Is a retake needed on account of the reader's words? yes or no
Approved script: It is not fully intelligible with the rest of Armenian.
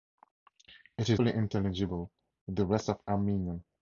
yes